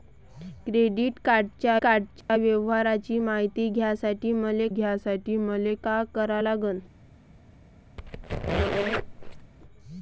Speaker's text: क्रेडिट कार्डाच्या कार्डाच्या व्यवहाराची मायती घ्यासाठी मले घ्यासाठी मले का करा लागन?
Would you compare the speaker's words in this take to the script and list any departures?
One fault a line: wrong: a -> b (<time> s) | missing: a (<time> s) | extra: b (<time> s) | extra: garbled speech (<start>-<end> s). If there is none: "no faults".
no faults